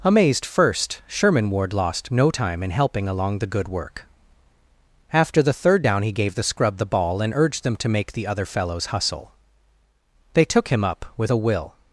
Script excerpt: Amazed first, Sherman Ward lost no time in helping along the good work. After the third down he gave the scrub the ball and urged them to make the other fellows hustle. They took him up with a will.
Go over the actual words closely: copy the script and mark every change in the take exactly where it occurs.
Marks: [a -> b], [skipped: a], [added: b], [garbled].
Amazed first, Sherman Ward lost no time in helping along the good work. After the third down he gave the scrub the ball and urged them to make the other fellows hustle. They took him up with a will.